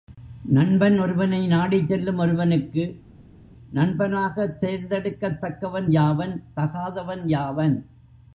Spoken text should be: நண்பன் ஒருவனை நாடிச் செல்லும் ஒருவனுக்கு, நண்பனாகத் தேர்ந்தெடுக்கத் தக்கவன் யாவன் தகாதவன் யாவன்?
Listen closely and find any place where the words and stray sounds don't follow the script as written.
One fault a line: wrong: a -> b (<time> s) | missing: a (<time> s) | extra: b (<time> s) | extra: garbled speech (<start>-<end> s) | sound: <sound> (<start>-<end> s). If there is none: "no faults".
no faults